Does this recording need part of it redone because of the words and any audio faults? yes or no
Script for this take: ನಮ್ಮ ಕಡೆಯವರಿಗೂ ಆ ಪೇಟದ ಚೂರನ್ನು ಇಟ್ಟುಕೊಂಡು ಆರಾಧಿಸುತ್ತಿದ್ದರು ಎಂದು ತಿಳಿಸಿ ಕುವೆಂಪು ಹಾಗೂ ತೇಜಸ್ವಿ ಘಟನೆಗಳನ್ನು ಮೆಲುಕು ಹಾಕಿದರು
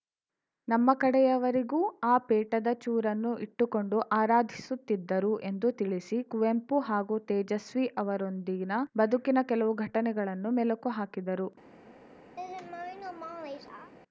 yes